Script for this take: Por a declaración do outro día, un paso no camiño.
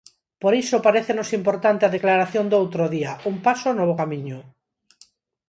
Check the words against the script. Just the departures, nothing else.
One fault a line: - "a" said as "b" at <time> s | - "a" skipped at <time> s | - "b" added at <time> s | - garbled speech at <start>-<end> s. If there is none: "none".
- "iso parécenos importante" added at 0.6 s
- "bo" added at 3.9 s